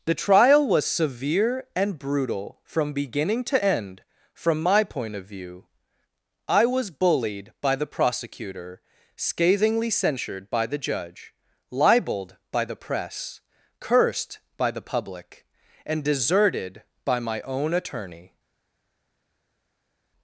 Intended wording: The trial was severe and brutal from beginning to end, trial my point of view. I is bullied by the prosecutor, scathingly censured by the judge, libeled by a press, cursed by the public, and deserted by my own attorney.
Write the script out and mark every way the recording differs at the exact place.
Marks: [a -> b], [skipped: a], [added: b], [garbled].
The trial was severe and brutal from beginning to end, [trial -> from] my point of view. I [is -> was] bullied by the prosecutor, scathingly censured by the judge, libeled by [a -> the] press, cursed by the public, and deserted by my own attorney.